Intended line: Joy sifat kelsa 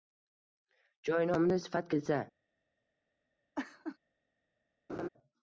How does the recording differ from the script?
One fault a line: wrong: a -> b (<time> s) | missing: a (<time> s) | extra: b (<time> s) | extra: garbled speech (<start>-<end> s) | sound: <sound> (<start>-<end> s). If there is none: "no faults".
extra: nomida (1.3 s)
sound: laugh (3.5-4.0 s)
sound: laugh (4.9-5.1 s)